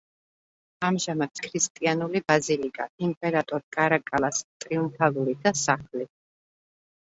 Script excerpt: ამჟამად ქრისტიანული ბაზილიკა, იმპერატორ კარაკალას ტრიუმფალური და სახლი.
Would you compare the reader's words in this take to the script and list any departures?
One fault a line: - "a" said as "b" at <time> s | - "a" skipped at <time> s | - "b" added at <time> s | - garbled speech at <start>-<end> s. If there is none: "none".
none